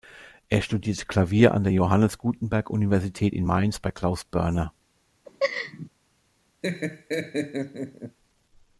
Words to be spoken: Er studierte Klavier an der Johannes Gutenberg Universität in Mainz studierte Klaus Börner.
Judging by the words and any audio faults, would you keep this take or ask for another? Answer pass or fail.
fail